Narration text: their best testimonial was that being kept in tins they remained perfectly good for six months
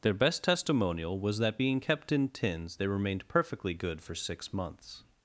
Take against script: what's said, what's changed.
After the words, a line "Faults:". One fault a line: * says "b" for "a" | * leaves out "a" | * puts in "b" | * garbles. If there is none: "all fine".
their best testimonial was that being kept in tins they remained perfectly good for six months
Faults:
all fine